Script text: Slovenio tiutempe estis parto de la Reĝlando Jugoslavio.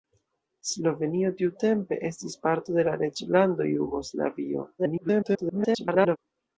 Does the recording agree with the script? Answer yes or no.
no